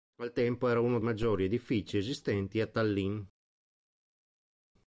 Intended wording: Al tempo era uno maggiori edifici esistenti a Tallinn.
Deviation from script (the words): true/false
false